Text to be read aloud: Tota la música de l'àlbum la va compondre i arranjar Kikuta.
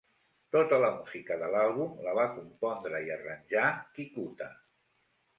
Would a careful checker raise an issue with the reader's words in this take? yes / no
no